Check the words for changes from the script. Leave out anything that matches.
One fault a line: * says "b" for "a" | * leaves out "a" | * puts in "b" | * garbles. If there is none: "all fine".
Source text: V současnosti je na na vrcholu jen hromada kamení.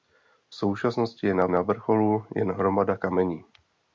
all fine